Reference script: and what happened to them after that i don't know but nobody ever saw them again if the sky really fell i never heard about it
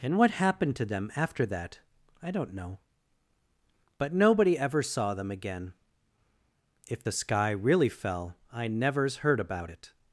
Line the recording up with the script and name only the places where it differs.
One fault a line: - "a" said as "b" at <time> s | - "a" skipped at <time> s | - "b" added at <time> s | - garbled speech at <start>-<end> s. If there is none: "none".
- "never" said as "nevers" at 8.7 s